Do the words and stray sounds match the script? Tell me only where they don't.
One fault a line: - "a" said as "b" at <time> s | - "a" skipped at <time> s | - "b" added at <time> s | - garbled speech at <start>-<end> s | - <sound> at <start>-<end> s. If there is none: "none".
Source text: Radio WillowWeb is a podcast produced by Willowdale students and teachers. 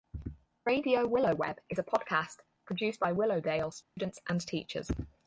- dropout at 3.8-4.0 s